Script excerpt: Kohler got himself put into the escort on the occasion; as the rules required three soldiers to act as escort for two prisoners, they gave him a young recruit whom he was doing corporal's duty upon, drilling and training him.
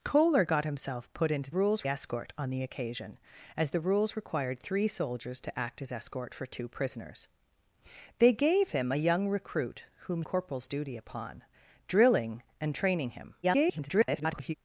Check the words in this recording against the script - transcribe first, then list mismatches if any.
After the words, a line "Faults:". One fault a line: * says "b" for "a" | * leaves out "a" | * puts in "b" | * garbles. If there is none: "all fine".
Kohler got himself put into rules escort on the occasion; as the rules required three soldiers to act as escort for two prisoners, they gave him a young recruit whom corporal's duty upon, drilling and training him. [garbled]
Faults:
* says "rules" for "the"
* leaves out "he was doing"
* garbles